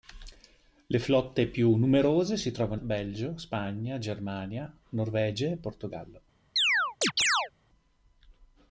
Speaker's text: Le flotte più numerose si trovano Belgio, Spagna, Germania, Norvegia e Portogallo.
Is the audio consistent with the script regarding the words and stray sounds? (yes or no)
no